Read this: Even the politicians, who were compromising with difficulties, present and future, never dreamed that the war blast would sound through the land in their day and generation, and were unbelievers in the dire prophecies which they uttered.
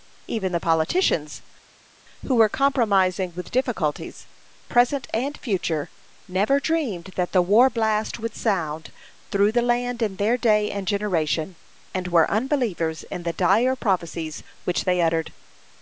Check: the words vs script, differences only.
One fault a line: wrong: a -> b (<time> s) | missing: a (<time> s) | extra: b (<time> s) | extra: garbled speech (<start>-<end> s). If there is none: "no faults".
no faults